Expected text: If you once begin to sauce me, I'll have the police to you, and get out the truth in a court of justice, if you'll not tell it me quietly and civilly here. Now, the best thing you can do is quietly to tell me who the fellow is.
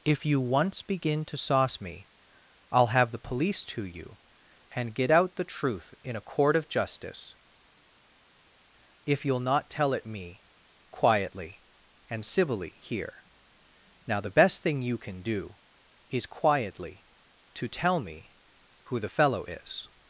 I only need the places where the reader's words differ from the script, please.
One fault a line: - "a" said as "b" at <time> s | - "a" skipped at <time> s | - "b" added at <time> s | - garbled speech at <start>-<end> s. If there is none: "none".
none